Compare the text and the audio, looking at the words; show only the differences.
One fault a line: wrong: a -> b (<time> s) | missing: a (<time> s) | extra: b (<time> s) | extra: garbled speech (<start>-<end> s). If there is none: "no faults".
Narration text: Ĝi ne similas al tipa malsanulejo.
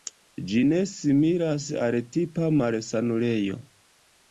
no faults